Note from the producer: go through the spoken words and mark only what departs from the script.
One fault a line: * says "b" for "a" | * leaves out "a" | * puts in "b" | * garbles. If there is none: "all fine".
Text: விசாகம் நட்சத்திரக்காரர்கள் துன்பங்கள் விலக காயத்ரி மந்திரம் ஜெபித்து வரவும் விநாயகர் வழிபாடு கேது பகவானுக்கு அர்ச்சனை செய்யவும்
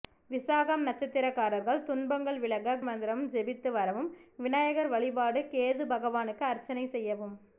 * leaves out "காயத்ரி"